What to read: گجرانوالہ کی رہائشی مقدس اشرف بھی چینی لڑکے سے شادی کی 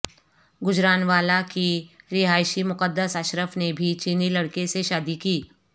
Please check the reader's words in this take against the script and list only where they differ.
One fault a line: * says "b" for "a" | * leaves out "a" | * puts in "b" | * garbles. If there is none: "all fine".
* puts in "نے"